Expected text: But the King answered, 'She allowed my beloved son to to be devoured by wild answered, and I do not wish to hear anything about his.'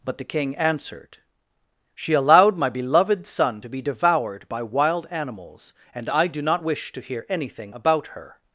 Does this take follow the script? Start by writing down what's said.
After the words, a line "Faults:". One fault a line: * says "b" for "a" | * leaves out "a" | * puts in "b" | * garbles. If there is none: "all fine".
But the King answered, 'She allowed my beloved son to be devoured by wild animals, and I do not wish to hear anything about her.'
Faults:
* leaves out "to"
* says "animals" for "answered"
* says "her" for "his"